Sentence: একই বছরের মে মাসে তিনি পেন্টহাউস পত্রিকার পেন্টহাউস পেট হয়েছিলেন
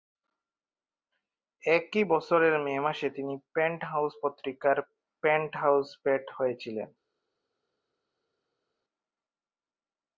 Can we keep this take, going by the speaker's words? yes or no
yes